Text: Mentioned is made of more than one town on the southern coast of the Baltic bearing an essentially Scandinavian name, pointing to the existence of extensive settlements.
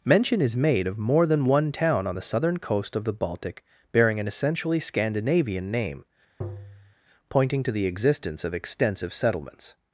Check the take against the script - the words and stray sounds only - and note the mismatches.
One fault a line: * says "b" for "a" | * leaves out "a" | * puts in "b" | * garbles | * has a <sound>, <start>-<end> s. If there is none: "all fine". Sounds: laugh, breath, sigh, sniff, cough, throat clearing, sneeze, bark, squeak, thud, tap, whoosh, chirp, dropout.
* says "Mention" for "Mentioned"
* has a tap, 6.4-6.9 s